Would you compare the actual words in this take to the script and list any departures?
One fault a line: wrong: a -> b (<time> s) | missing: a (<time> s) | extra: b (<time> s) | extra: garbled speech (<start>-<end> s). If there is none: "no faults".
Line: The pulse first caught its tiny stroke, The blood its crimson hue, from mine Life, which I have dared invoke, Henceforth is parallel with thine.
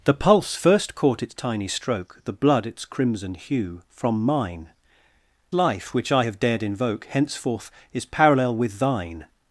no faults